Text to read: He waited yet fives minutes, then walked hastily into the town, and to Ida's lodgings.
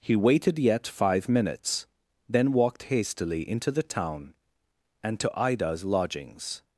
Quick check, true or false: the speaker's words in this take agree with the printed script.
false